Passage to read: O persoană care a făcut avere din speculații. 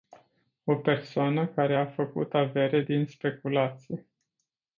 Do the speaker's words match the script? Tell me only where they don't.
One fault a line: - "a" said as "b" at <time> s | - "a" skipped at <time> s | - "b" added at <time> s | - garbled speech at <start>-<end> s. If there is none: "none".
none